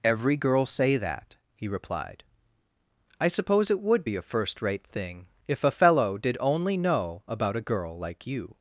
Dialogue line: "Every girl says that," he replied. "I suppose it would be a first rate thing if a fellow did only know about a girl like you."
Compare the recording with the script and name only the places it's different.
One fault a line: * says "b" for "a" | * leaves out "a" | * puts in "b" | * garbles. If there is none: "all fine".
* says "say" for "says"